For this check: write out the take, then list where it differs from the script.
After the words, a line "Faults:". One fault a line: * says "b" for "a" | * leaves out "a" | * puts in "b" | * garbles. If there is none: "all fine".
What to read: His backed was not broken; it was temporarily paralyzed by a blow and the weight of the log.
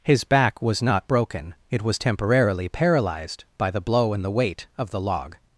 His back was not broken; it was temporarily paralyzed by the blow and the weight of the log.
Faults:
* says "back" for "backed"
* says "the" for "a"